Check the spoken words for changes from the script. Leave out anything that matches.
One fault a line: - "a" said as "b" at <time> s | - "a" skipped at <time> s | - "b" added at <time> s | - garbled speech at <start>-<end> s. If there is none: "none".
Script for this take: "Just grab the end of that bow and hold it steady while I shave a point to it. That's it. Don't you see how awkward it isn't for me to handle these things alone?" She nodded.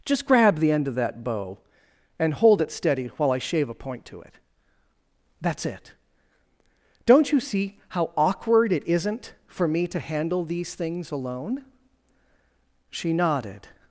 none